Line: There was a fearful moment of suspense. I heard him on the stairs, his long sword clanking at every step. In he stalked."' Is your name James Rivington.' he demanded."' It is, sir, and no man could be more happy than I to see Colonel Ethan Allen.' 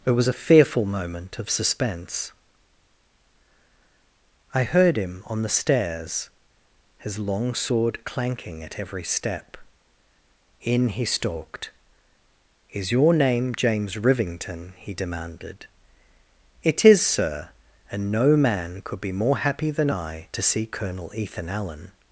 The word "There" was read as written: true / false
false